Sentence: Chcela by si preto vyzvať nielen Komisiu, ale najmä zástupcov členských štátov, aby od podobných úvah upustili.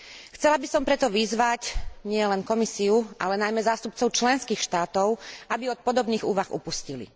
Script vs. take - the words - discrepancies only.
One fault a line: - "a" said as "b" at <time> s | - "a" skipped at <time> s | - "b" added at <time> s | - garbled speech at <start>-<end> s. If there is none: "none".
- "si" said as "som" at 0.7 s